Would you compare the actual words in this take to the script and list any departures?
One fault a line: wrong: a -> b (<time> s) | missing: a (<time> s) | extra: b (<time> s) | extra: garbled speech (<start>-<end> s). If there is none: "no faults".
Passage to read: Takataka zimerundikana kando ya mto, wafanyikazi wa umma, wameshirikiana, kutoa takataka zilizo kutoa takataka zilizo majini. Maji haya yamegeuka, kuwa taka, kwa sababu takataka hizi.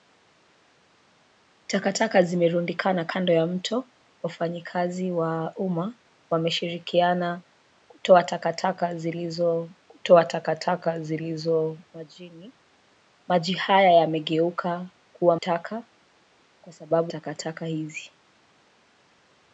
no faults